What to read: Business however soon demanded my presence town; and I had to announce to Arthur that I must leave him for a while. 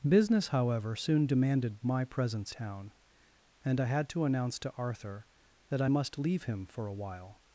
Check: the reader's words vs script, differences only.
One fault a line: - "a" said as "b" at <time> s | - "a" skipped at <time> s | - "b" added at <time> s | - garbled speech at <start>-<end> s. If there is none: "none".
none